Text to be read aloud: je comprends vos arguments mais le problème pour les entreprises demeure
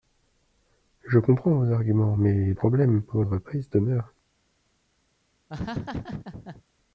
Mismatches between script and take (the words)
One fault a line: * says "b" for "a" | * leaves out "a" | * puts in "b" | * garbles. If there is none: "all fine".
* leaves out "le"
* leaves out "les"